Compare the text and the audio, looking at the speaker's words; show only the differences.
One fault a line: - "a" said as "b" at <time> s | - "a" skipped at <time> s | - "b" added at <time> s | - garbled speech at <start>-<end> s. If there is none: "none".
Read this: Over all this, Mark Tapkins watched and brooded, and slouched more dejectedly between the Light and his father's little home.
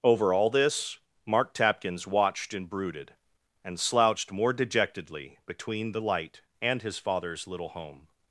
none